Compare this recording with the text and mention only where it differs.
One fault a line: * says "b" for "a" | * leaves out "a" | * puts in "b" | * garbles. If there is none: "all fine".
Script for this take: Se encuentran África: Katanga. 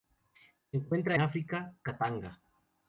all fine